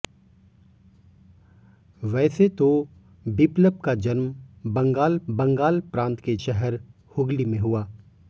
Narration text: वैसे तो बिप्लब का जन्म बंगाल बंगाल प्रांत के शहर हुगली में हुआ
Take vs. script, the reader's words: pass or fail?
pass